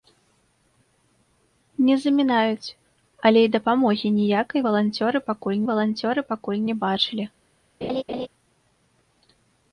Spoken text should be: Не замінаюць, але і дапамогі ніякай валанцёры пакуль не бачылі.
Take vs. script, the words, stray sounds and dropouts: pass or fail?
fail